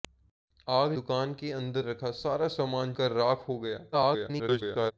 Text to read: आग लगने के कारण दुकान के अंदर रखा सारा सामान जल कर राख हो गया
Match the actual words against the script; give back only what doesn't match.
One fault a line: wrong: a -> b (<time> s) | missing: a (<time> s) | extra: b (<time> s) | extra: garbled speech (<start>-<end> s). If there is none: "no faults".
missing: लगने के कारण (0.9 s)
missing: जल (2.9 s)
extra: garbled speech (3.9-4.9 s)